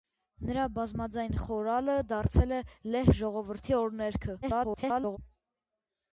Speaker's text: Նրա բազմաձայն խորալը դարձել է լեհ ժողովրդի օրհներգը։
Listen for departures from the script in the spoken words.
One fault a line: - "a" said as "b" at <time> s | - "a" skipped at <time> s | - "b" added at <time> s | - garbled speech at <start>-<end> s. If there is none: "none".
- garbled speech at 4.4-5.2 s